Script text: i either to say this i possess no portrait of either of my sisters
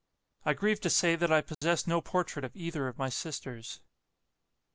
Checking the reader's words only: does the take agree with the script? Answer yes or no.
no